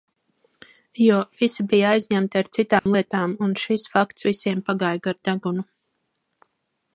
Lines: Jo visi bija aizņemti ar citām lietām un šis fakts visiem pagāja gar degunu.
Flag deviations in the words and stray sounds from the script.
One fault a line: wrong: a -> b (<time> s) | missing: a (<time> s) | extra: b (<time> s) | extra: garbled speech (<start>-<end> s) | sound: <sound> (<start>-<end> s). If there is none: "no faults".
sound: dropout (2.8-2.9 s)